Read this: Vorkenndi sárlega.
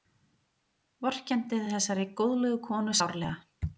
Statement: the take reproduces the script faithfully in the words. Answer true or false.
false